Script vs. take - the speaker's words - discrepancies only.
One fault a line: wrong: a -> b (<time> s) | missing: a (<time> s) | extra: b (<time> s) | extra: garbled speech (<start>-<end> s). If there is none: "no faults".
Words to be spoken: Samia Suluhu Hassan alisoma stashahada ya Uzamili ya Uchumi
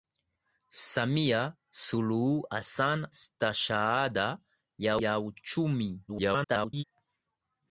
missing: alisoma (3.1 s)
missing: Uzamili (5.0 s)
extra: garbled speech (6.1-6.8 s)